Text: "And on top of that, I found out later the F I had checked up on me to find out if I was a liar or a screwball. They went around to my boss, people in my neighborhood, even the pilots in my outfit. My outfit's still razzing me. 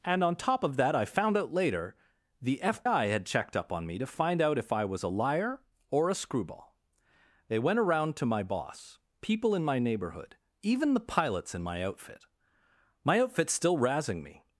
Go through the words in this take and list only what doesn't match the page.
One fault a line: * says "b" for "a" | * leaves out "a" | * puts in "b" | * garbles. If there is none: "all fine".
all fine